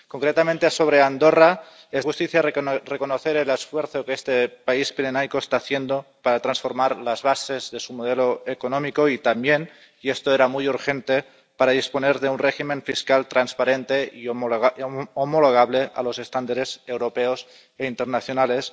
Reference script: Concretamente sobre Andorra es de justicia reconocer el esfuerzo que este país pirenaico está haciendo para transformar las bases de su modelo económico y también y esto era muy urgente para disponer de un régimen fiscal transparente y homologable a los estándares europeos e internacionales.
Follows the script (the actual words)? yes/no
no